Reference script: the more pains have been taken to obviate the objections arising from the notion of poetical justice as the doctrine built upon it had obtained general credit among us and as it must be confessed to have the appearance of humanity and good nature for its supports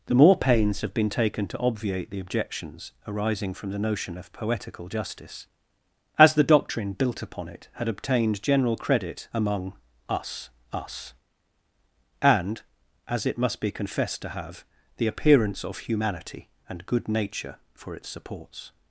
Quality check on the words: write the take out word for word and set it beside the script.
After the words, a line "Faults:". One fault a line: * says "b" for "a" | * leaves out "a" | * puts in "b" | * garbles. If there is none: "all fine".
the more pains have been taken to obviate the objections arising from the notion of poetical justice as the doctrine built upon it had obtained general credit among us us and as it must be confessed to have the appearance of humanity and good nature for its supports
Faults:
* puts in "us"